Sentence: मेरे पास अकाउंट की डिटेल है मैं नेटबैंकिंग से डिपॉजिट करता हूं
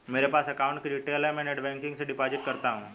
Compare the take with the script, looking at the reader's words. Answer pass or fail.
pass